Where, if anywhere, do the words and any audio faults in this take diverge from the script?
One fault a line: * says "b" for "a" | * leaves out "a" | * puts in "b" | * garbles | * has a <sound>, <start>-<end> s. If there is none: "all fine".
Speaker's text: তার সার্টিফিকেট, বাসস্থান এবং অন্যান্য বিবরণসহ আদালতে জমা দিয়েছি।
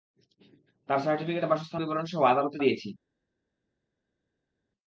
* leaves out "এবং অন্যান্য"
* leaves out "জমা"